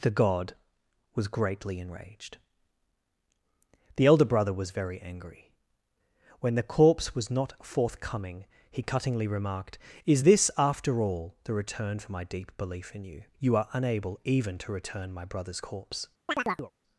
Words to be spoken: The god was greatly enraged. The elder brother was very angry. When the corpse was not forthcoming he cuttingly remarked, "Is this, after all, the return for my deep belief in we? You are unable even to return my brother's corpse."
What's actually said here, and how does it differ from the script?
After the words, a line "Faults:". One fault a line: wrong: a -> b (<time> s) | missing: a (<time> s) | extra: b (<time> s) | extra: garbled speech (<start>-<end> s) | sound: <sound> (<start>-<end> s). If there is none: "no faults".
The god was greatly enraged. The elder brother was very angry. When the corpse was not forthcoming he cuttingly remarked, "Is this, after all, the return for my deep belief in you? You are unable even to return my brother's corpse."
Faults:
wrong: we -> you (13.0 s)
sound: chirp (16.3-16.7 s)